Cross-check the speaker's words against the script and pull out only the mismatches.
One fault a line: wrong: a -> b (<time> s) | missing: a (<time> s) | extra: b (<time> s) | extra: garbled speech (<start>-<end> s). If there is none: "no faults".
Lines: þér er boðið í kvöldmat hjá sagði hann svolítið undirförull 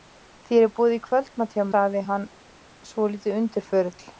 no faults